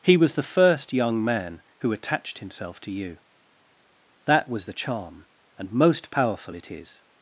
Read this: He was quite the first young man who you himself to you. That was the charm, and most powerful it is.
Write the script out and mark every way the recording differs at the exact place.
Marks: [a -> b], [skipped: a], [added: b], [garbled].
He was [skipped: quite] the first young man who [you -> attached] himself to you. That was the charm, and most powerful it is.